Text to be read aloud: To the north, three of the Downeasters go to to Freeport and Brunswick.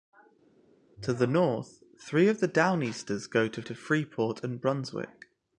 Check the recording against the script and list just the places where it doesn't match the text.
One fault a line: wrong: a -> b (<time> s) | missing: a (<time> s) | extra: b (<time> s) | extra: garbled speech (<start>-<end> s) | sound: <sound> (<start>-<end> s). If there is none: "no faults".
no faults